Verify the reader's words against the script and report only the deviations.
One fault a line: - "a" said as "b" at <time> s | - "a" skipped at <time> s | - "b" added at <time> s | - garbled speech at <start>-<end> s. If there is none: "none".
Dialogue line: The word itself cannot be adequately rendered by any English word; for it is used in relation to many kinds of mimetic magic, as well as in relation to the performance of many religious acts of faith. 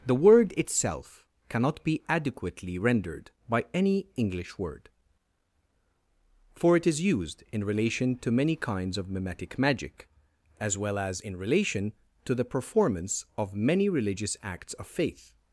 none